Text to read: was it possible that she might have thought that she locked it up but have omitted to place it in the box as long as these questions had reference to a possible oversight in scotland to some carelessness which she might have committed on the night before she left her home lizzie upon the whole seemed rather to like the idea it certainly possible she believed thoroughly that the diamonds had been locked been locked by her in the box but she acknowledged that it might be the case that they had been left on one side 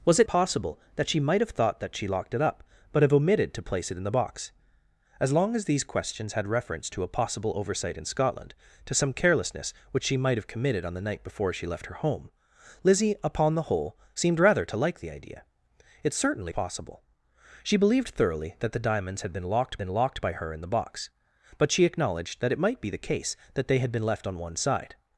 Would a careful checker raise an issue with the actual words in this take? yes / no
no